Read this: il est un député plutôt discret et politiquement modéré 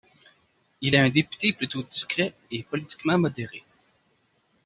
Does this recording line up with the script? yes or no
yes